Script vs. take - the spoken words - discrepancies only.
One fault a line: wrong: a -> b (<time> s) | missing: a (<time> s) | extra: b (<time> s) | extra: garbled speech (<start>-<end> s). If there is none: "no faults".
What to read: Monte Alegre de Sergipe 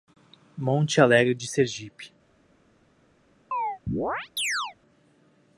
no faults